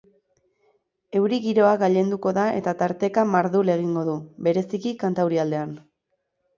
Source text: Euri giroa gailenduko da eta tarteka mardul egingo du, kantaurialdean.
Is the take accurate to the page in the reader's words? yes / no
no